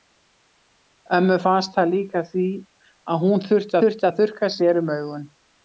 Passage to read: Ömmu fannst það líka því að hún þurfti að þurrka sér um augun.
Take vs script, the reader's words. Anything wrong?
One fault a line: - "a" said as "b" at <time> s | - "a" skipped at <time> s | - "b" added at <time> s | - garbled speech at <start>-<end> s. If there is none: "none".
- "þurfti" added at 3.8 s